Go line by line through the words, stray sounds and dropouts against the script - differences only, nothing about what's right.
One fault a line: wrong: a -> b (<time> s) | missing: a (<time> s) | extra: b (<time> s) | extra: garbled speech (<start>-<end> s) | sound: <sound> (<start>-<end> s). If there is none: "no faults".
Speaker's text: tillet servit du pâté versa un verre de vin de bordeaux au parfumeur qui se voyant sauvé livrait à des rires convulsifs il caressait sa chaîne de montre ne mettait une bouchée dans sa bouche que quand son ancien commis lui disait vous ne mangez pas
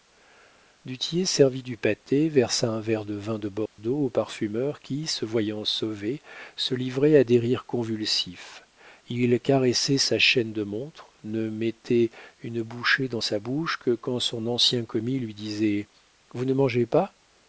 sound: dropout (3.7-3.8 s)
extra: se (6.5 s)